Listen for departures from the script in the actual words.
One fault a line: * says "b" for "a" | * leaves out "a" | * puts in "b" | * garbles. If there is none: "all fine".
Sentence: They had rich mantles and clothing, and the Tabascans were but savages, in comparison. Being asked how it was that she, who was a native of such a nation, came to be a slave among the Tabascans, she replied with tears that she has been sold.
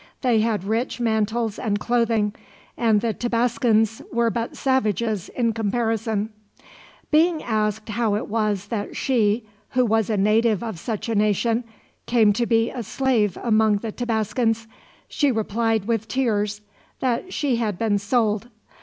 * says "had" for "has"